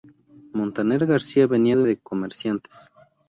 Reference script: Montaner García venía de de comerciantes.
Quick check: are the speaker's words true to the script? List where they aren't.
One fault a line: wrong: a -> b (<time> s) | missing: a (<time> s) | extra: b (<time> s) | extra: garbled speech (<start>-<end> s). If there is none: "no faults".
no faults